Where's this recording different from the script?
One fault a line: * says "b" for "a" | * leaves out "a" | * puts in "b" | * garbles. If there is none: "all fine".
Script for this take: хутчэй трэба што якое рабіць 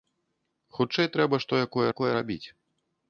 * puts in "якое"